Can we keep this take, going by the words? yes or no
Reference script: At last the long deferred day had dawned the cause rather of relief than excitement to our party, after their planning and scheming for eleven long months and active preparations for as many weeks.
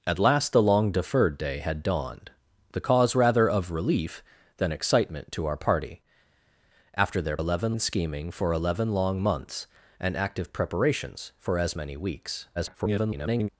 no